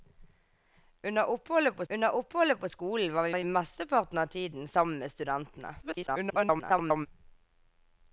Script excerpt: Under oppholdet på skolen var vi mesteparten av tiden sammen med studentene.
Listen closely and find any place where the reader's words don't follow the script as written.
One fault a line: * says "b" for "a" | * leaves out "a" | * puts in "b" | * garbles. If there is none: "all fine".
* puts in "under oppholdet på"
* puts in "vi"
* garbles